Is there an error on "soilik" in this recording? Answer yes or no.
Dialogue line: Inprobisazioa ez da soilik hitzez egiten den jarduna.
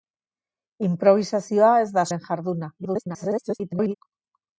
yes